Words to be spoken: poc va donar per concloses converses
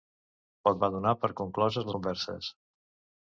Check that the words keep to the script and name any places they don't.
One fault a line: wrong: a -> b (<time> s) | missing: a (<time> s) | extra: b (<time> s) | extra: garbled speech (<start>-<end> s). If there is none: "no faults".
no faults